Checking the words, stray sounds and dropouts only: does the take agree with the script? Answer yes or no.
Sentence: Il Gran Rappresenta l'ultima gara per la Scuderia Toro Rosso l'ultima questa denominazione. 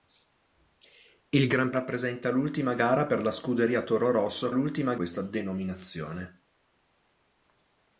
yes